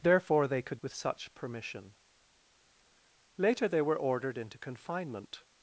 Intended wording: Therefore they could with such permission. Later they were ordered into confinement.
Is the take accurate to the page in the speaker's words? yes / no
yes